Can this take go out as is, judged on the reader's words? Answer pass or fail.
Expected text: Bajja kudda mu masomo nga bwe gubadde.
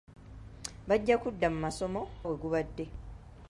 fail